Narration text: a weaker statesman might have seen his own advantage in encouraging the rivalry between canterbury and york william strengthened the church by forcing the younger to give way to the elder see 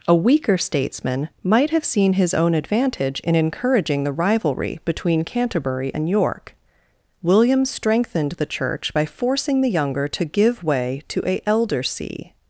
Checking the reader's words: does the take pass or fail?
fail